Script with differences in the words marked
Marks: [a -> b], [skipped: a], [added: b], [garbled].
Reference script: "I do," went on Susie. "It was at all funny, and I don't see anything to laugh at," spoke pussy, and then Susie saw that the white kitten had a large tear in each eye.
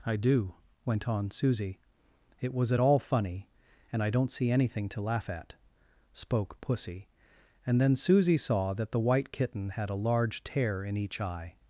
"I do," went on Susie. "It was at all funny, and I don't see anything to laugh at," spoke pussy, and then Susie saw that the white kitten had a large tear in each eye.